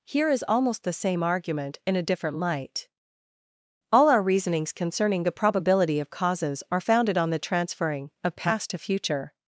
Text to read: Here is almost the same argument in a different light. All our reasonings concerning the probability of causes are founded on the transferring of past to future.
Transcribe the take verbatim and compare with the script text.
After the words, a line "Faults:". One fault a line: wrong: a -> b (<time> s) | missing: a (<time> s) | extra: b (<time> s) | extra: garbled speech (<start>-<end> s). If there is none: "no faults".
Here is almost the same argument in a different light. All our reasonings concerning the probability of causes are founded on the transferring of past to future.
Faults:
no faults